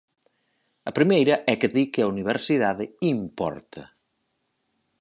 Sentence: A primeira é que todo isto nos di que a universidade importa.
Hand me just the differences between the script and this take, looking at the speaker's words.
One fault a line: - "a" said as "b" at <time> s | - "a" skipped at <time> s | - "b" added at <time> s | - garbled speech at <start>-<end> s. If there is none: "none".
- "todo isto nos" skipped at 1.7 s